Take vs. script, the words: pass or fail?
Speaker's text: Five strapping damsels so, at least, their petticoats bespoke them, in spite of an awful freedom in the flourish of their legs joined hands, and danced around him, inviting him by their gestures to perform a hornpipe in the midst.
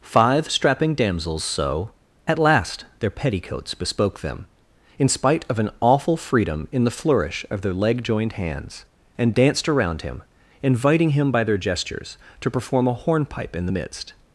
fail